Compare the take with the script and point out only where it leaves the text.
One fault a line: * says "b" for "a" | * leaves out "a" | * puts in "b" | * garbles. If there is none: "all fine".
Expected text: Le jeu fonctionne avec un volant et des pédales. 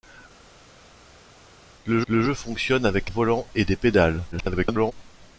* puts in "le"
* leaves out "un"
* garbles